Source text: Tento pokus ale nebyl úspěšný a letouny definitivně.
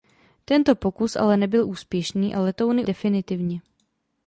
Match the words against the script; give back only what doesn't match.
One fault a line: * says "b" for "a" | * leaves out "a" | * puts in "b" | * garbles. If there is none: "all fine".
all fine